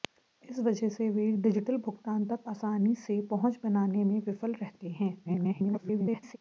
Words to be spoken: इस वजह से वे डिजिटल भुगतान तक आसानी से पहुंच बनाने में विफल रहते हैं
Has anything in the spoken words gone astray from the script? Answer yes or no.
yes